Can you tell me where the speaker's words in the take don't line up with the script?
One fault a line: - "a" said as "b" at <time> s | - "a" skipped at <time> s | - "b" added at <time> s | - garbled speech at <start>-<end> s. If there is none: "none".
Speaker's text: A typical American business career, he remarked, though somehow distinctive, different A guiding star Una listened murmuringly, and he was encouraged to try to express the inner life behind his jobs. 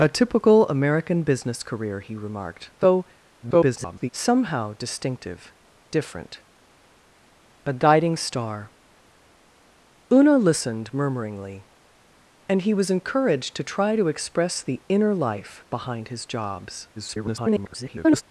- garbled speech at 3.4-4.1 s
- garbled speech at 16.9-18.2 s